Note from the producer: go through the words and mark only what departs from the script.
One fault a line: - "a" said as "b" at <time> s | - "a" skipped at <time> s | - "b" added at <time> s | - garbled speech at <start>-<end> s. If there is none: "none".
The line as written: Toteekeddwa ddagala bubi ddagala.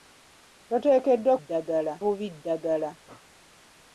none